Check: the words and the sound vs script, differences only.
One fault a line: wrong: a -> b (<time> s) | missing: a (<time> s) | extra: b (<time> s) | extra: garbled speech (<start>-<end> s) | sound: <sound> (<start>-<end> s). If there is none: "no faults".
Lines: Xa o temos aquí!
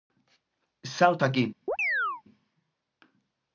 missing: temos (1.2 s)
sound: chirp (1.7-2.2 s)